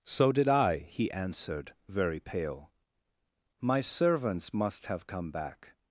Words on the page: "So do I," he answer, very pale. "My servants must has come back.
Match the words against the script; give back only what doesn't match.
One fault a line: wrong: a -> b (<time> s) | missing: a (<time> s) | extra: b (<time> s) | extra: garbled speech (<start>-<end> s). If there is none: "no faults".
wrong: do -> did (0.3 s)
wrong: answer -> answered (1.1 s)
wrong: has -> have (4.9 s)